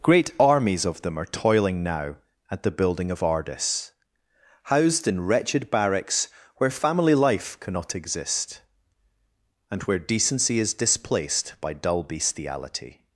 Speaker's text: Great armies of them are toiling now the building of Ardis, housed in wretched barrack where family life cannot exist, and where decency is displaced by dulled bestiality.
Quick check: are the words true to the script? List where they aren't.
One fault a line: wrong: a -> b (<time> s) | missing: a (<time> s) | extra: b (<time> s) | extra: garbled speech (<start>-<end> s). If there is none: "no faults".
extra: at (2.5 s)
wrong: barrack -> barracks (5.7 s)
wrong: dulled -> dull (11.7 s)